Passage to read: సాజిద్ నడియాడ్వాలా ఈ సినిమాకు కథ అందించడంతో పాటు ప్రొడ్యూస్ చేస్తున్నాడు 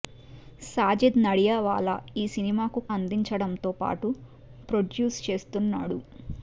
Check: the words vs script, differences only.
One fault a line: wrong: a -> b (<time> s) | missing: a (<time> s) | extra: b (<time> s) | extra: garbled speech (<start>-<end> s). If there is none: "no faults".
missing: కథ (2.8 s)